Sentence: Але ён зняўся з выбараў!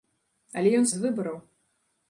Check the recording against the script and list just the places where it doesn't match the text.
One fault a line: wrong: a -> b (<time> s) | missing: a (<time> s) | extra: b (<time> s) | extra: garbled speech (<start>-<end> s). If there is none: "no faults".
missing: зняўся (0.9 s)